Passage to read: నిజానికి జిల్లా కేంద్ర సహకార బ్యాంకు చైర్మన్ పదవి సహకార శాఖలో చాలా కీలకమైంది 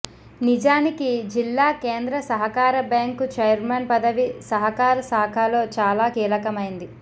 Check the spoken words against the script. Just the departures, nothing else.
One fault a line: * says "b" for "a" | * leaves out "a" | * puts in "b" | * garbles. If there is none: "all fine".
all fine